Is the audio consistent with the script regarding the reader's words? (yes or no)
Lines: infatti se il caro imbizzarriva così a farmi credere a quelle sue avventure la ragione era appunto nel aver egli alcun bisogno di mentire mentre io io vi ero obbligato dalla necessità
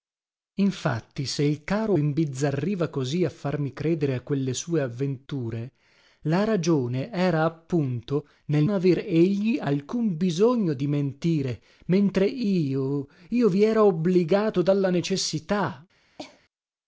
yes